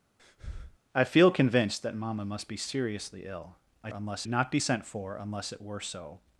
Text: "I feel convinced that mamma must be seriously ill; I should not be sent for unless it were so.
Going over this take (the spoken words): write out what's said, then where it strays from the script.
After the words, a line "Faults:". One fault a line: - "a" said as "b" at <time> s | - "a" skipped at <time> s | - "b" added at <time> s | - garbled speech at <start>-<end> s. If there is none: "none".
"I feel convinced that mamma must be seriously ill; I unless not be sent for unless it were so.
Faults:
- "should" said as "unless" at 3.9 s